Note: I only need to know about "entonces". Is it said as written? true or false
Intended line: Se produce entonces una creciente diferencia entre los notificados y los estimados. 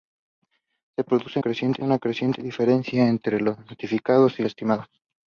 false